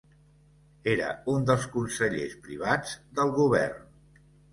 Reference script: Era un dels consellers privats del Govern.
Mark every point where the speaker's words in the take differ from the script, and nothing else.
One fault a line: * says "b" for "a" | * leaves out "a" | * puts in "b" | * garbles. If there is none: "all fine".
all fine